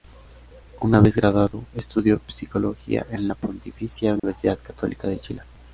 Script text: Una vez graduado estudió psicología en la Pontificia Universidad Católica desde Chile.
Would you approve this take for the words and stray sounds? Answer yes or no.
no